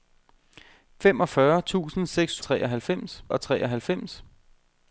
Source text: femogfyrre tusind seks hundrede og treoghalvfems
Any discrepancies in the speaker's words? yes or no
yes